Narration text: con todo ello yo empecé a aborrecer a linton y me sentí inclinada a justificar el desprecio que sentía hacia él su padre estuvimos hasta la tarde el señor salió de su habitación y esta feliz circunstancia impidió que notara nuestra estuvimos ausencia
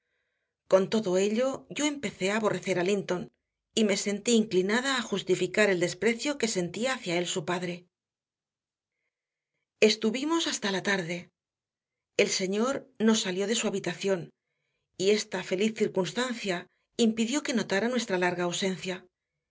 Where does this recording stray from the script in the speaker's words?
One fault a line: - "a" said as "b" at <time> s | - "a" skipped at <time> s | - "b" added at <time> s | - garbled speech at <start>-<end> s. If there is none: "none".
- "no" added at 13.0 s
- "estuvimos" said as "larga" at 18.2 s